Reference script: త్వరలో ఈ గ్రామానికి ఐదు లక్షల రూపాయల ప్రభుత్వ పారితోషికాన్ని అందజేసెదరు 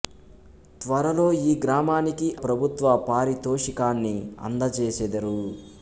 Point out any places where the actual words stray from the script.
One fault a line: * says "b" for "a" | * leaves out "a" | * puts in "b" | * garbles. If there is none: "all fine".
* leaves out "ఐదు లక్షల రూపాయల"